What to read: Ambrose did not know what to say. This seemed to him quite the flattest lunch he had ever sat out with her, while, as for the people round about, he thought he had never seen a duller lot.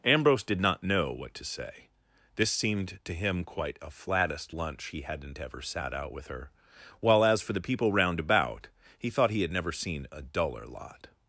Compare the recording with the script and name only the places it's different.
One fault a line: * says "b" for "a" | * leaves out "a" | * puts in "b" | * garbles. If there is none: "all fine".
* says "a" for "the"
* says "hadn't" for "had"